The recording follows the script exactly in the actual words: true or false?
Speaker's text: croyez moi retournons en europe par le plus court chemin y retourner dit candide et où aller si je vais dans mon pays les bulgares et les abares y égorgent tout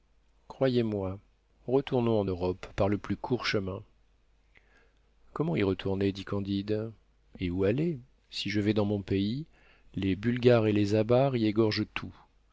false